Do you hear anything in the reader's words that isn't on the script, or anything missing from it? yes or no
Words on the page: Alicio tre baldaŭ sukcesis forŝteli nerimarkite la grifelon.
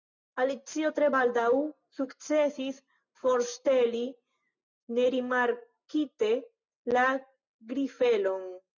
no